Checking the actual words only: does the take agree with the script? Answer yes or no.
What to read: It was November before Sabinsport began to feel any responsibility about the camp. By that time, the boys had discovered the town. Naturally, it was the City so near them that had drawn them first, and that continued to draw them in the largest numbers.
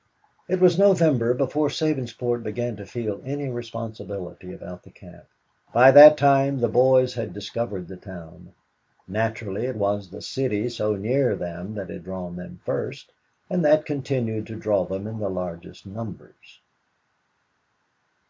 yes